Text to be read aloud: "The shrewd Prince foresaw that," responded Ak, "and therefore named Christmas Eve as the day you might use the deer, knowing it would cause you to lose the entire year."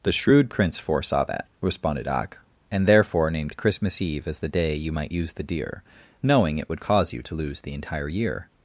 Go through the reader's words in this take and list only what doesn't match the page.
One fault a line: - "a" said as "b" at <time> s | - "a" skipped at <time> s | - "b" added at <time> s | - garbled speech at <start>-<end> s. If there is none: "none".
none